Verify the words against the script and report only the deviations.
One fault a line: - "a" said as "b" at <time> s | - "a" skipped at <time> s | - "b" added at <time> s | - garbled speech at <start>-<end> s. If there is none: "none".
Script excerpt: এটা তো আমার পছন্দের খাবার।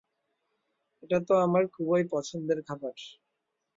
- "খুবই" added at 1.7 s